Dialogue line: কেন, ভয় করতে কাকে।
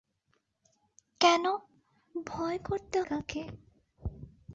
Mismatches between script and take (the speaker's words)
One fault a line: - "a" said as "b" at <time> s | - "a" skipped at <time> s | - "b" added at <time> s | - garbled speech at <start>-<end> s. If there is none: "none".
none